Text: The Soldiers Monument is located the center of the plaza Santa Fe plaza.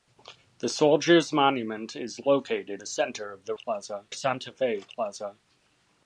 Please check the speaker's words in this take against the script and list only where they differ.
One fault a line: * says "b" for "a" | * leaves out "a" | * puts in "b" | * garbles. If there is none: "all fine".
all fine